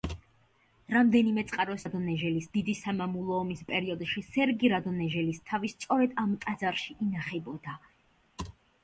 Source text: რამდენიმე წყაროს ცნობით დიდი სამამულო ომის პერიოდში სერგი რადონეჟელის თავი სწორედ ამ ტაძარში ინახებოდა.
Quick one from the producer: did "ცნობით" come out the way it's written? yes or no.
no